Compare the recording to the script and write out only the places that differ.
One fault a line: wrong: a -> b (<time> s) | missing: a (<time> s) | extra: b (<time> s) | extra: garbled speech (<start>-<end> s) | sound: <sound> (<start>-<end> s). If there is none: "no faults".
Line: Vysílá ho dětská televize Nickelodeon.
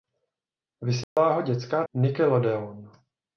sound: dropout (1.0-1.2 s)
missing: televize (1.8 s)